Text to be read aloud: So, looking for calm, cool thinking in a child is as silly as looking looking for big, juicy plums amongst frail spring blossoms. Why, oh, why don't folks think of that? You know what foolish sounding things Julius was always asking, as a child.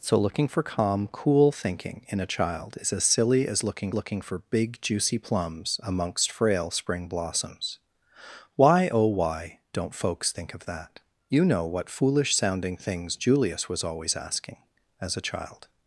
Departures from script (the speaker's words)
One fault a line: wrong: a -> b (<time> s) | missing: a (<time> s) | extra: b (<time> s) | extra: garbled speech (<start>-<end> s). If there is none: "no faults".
no faults